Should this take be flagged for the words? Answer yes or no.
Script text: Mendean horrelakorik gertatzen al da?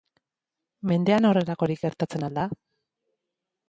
no